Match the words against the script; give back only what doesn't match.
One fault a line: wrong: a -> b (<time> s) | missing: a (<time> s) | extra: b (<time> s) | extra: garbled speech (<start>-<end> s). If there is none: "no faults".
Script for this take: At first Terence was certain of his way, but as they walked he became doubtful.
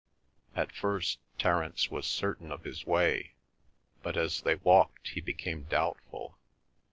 no faults